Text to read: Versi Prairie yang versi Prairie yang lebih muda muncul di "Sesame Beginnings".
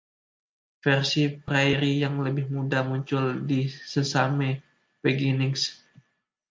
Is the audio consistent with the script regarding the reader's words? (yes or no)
no